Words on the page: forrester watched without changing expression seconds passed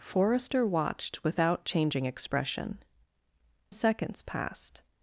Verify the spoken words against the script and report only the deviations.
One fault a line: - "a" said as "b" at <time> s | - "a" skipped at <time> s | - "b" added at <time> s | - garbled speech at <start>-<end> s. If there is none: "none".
none